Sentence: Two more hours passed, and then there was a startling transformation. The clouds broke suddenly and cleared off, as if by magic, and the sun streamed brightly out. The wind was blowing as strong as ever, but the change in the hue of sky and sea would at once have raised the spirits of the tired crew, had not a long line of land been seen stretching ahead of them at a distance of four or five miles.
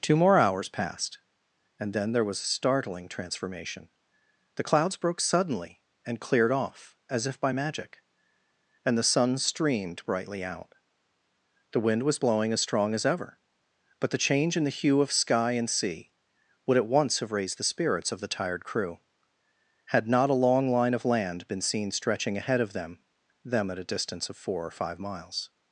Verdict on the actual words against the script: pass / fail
fail